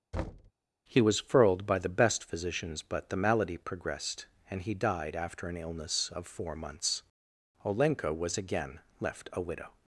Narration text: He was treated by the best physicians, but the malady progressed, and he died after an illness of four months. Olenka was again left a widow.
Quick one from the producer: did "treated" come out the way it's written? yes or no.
no